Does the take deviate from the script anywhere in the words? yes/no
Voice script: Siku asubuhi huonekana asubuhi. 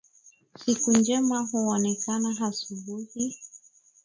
yes